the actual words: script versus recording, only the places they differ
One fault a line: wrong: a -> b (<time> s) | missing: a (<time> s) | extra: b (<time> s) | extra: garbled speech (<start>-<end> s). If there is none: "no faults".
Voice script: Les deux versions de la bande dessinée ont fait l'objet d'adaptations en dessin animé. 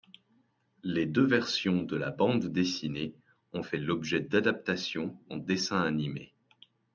no faults